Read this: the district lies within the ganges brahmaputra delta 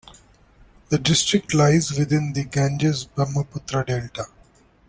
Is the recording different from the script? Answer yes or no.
no